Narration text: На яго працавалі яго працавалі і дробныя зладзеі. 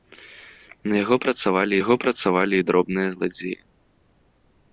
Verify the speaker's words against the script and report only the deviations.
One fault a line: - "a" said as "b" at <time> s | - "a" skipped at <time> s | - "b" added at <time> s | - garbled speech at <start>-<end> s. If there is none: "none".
none